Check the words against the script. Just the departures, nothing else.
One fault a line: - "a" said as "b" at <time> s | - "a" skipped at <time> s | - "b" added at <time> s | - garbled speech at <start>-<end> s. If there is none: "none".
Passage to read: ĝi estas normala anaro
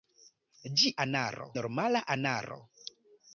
- "estas" said as "anaro" at 1.1 s